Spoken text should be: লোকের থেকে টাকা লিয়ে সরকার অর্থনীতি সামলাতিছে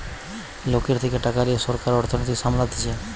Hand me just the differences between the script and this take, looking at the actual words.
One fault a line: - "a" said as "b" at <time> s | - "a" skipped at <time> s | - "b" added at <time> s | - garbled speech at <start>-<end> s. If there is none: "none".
none